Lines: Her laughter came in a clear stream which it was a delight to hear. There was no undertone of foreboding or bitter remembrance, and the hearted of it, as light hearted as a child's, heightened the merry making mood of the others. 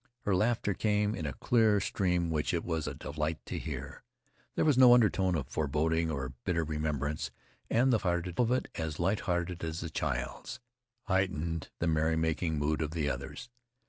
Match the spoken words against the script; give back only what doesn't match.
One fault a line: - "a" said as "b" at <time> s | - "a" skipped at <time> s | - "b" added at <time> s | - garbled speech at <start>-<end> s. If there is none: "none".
none